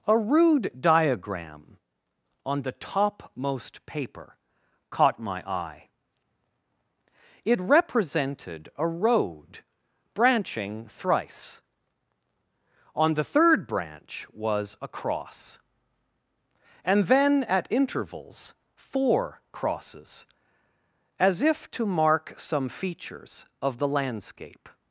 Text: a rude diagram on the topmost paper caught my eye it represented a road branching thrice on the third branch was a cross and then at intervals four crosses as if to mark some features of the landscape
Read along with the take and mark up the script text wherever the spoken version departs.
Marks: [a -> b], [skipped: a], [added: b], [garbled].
a rude diagram on the topmost paper caught my eye it represented a road branching thrice on the third branch was a cross and then at intervals four crosses as if to mark some features of the landscape